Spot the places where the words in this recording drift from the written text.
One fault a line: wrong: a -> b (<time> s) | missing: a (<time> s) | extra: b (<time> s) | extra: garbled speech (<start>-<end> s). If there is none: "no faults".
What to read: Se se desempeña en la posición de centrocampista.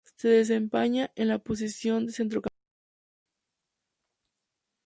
missing: se (0.3 s)